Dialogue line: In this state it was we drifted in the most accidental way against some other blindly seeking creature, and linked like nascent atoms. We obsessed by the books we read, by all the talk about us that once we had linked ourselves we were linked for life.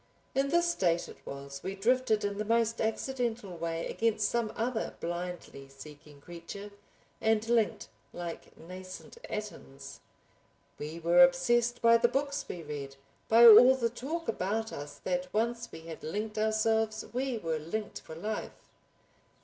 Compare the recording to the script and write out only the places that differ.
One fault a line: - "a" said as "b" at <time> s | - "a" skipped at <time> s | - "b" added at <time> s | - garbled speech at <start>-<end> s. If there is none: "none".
- "were" added at 11.0 s